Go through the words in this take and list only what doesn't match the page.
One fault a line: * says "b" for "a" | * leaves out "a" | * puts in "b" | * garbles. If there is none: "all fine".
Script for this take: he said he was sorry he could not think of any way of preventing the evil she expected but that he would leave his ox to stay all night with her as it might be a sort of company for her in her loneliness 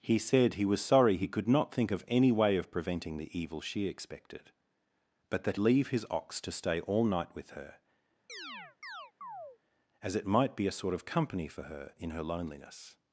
* leaves out "he would"